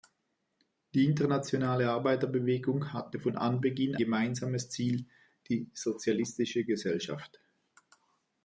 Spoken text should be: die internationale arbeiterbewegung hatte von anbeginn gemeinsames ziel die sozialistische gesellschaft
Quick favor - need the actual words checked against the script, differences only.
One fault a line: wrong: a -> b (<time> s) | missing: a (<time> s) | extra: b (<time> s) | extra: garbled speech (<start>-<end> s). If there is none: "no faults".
no faults